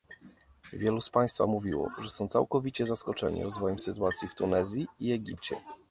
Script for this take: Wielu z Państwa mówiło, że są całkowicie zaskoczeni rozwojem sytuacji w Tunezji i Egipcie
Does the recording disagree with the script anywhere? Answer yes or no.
no